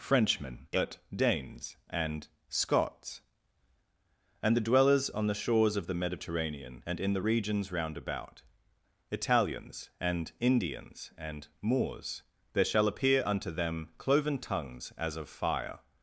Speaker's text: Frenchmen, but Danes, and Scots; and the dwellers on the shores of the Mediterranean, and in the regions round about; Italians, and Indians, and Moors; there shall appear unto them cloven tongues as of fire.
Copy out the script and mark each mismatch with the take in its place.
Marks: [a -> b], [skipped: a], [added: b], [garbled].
Frenchmen, but Danes, and Scots; and the dwellers on the shores of the Mediterranean, and in the regions round about; Italians, and Indians, and Moors; there shall appear unto them cloven tongues as of fire.